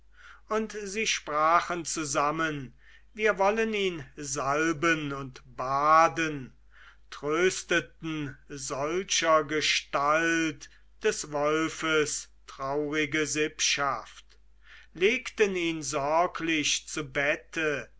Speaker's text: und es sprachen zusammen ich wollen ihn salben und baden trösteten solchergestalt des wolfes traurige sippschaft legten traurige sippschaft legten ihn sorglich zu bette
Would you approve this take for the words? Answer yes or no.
no